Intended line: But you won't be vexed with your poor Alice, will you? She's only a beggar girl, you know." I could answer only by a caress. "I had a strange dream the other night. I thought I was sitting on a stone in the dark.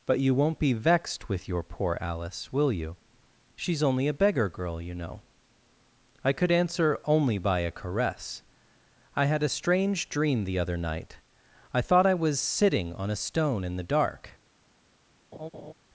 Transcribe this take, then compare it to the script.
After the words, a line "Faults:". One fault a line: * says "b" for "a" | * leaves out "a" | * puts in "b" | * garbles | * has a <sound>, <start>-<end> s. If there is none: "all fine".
But you won't be vexed with your poor Alice, will you? She's only a beggar girl, you know." I could answer only by a caress. "I had a strange dream the other night. I thought I was sitting on a stone in the dark.
Faults:
* has a laugh, 15.3-15.7 s